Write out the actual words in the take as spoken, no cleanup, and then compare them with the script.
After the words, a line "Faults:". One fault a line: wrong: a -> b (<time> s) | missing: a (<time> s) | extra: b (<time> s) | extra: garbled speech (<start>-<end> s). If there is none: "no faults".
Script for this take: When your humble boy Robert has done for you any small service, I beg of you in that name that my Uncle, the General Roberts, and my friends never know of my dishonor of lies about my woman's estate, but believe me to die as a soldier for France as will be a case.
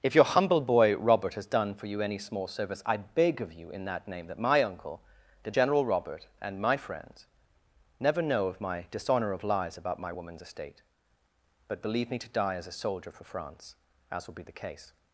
If your humble boy Robert has done for you any small service, I beg of you in that name that my Uncle, the General Robert, and my friends never know of my dishonor of lies about my woman's estate, but believe me to die as a soldier for France as will be the case.
Faults:
wrong: When -> If (0.0 s)
wrong: Roberts -> Robert (5.8 s)
wrong: a -> the (14.4 s)